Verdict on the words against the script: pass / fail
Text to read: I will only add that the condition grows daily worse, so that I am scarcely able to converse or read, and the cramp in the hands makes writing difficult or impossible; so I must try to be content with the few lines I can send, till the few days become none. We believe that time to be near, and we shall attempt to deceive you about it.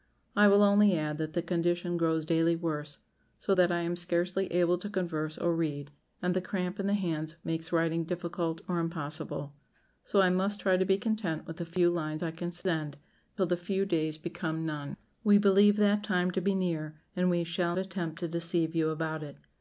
pass